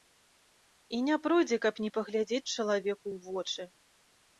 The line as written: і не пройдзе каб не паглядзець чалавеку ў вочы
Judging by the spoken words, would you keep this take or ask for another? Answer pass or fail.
pass